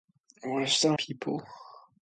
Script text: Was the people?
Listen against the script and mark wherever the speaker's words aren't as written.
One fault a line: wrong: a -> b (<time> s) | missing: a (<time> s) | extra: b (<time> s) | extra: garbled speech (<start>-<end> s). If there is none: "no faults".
no faults